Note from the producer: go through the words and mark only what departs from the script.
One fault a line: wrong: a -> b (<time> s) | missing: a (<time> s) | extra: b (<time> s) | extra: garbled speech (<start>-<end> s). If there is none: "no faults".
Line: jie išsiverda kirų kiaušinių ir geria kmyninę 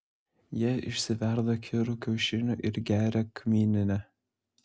no faults